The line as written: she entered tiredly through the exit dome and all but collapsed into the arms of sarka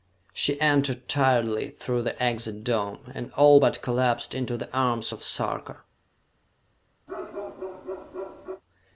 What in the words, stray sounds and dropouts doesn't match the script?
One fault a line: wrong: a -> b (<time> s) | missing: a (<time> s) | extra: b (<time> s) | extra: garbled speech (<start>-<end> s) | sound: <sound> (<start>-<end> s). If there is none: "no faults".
sound: bark (7.1-8.6 s)